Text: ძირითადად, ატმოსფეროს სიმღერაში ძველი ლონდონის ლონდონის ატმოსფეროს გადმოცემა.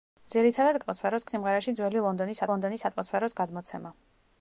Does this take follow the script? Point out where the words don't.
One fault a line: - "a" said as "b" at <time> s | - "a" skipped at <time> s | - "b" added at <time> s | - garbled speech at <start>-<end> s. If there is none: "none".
none